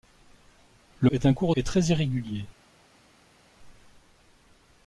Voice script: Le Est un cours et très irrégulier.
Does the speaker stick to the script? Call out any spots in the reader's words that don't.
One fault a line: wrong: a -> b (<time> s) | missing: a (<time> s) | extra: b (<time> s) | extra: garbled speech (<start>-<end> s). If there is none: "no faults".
no faults